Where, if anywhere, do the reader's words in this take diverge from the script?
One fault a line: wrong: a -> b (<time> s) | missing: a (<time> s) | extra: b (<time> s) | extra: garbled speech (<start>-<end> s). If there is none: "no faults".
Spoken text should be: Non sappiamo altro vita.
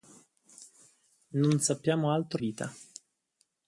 no faults